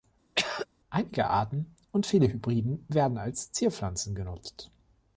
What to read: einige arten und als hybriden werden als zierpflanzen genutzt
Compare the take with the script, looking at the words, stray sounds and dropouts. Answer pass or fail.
fail